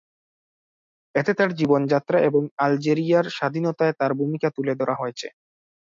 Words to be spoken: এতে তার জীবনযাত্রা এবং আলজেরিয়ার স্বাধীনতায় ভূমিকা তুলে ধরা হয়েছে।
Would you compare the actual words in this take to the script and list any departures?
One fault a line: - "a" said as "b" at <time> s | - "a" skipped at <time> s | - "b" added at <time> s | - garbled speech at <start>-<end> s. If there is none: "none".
- "তার" added at 4.0 s